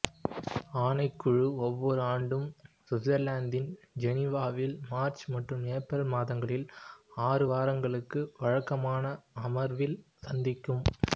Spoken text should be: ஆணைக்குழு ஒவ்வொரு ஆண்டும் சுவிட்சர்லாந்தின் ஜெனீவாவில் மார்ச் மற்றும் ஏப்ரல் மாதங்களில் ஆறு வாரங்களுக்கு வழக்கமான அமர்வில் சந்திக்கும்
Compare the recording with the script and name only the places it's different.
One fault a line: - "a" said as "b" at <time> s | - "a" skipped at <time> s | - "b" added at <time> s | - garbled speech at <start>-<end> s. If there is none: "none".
none